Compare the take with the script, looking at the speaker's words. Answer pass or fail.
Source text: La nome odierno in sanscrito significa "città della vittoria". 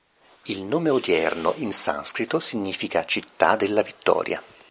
fail